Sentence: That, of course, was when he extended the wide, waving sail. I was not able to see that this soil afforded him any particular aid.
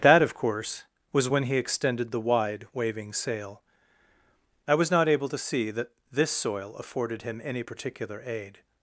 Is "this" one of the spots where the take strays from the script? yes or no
no